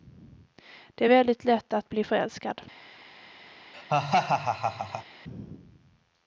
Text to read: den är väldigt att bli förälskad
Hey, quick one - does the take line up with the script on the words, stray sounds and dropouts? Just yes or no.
no